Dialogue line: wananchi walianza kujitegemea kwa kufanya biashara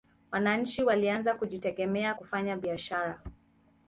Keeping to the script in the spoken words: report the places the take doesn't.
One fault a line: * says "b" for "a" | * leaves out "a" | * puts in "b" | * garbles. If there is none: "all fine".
* leaves out "kwa"